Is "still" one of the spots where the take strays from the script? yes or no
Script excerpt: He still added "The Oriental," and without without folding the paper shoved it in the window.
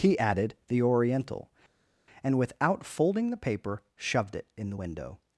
yes